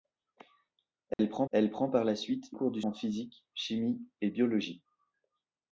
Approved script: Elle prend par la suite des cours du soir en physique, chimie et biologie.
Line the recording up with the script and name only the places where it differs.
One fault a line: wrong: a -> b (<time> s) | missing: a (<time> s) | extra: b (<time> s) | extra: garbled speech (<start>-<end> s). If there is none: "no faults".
extra: elle prend (1.5 s)
missing: des (2.6 s)
missing: soir (2.8 s)